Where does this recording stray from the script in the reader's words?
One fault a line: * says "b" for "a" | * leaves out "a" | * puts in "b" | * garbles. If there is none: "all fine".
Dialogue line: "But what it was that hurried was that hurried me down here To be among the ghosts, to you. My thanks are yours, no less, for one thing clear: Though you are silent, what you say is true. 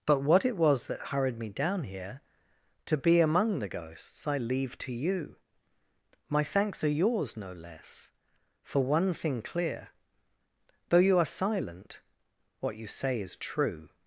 * leaves out "was that hurried"
* puts in "I leave"